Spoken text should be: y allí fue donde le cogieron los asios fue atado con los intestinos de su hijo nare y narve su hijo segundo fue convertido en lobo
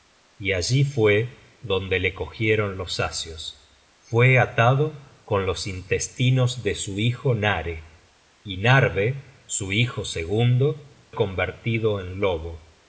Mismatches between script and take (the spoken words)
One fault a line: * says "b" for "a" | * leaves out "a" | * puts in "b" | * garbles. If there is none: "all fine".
* leaves out "fue"